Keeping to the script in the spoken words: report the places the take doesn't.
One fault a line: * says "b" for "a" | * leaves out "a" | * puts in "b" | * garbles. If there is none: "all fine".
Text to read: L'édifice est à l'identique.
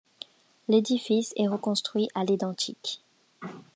* puts in "reconstruit"